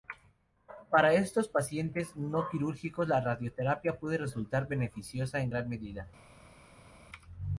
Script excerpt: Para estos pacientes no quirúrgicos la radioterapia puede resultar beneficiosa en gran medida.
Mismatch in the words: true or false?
false